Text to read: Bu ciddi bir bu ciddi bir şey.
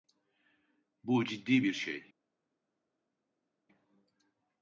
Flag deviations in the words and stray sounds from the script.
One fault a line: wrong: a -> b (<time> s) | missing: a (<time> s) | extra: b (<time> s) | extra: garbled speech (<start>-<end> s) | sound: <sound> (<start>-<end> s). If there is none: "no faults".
missing: bu ciddi bir (1.7 s)